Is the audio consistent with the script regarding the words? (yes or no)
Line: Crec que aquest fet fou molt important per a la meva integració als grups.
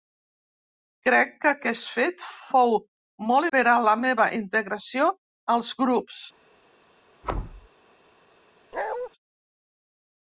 no